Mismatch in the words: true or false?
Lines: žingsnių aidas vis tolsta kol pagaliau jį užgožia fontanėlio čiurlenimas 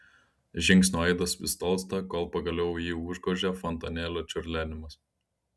false